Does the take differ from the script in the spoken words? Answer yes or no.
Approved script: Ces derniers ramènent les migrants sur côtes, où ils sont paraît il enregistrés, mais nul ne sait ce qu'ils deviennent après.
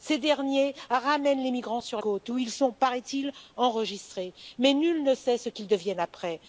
no